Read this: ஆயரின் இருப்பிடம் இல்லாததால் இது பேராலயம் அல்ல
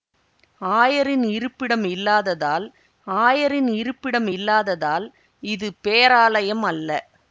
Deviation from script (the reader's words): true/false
true